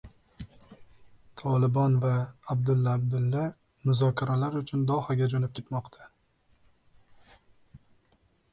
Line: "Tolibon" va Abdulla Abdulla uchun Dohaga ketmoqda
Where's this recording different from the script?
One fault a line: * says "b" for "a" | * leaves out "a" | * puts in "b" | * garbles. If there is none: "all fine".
* puts in "muzokaralar"
* puts in "jo‘nab"